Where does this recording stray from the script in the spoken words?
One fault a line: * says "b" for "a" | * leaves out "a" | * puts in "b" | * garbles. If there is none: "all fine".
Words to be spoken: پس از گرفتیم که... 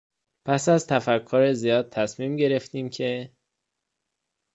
* puts in "تفکر زیاد تصمیم"